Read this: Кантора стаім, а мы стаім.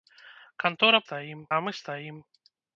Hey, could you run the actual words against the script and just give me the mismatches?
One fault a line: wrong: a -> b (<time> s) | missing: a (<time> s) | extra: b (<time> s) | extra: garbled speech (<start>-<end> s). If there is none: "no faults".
no faults